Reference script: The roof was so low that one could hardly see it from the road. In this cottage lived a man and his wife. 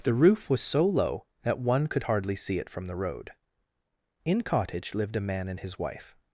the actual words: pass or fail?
fail